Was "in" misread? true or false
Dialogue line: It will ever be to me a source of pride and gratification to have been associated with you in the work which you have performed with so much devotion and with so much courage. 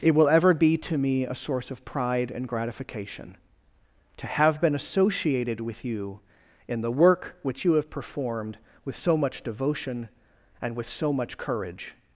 false